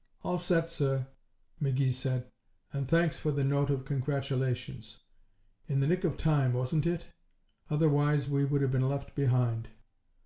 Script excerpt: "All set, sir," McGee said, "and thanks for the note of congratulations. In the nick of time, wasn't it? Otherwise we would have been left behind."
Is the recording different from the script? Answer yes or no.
no